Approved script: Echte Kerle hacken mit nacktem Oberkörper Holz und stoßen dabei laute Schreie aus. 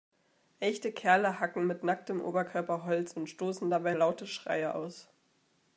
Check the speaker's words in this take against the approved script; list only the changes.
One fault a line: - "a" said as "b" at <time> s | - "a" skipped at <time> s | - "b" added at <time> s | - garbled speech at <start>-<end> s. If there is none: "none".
none